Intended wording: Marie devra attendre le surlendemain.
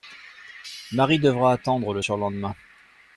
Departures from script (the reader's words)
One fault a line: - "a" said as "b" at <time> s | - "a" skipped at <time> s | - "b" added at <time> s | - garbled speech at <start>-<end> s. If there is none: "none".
none